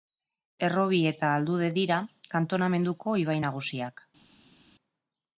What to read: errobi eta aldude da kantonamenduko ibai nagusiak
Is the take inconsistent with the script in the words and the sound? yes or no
yes